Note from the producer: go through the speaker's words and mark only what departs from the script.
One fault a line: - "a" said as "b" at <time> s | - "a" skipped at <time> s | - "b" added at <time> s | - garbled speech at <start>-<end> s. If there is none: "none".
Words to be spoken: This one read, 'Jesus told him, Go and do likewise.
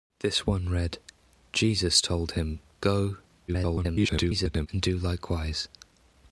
- garbled speech at 3.5-4.7 s